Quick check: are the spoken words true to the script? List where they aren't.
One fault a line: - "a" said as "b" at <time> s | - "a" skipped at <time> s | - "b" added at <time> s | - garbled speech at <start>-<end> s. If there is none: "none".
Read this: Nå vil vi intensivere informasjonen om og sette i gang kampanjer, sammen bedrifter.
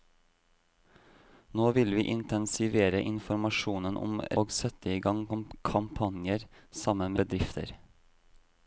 none